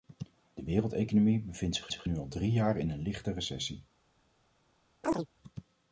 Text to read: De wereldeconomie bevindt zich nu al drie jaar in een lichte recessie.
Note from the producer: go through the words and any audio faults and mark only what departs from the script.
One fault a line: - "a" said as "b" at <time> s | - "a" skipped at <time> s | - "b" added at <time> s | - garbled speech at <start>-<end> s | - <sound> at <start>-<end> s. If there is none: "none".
- "zich" added at 1.9 s
- chirp at 5.0-5.3 s